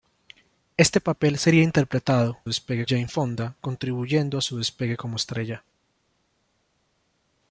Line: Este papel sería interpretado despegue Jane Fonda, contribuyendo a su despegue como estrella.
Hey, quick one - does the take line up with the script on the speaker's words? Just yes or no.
yes